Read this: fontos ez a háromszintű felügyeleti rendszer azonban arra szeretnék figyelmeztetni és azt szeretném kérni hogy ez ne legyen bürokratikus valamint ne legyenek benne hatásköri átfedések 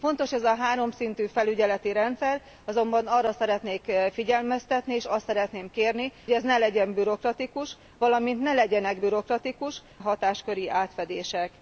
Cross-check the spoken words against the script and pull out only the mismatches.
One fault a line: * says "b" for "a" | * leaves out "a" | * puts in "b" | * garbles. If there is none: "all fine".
* leaves out "hogy"
* says "bürokratikus" for "benne"